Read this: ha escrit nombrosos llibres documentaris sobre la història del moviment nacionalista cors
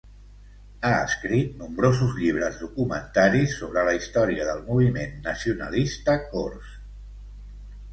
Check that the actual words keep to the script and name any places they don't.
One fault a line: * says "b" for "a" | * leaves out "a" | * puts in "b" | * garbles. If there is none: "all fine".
all fine